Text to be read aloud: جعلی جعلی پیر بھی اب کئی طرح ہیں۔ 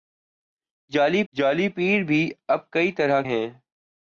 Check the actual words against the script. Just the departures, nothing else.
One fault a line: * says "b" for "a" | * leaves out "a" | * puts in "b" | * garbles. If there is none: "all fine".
all fine